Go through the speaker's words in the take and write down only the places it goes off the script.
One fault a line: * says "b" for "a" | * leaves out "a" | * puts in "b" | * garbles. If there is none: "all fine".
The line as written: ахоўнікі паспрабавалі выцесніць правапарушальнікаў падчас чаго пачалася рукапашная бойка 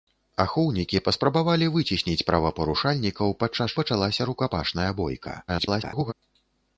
* leaves out "чаго"
* garbles